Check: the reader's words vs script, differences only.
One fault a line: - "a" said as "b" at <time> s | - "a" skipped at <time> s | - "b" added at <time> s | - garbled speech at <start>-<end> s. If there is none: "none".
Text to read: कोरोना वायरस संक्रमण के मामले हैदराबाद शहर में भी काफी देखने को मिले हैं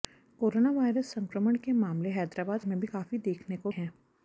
- "शहर" skipped at 2.6 s
- "मिले" skipped at 3.7 s